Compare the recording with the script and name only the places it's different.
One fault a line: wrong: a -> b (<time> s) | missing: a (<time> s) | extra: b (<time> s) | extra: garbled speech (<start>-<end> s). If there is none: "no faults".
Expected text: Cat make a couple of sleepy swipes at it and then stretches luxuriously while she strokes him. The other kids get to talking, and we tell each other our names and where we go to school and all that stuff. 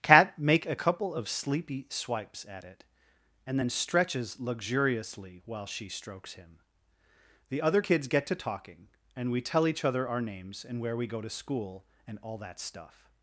no faults